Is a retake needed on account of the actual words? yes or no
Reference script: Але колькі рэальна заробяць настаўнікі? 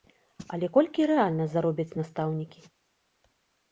no